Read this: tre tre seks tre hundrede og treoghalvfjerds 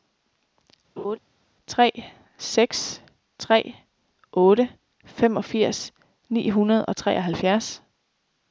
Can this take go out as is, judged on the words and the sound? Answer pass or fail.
fail